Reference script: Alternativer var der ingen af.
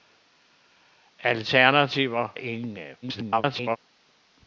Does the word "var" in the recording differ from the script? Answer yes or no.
yes